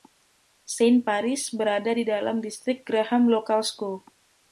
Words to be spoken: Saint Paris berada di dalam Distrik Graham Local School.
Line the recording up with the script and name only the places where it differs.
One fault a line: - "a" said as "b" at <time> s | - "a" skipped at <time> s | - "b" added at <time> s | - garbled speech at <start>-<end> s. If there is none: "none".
none